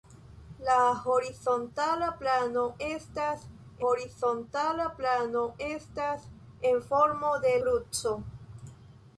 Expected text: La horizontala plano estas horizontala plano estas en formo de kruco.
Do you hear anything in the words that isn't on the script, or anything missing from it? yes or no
no